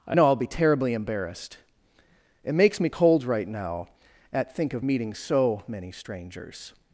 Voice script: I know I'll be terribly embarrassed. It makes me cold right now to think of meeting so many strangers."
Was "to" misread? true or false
true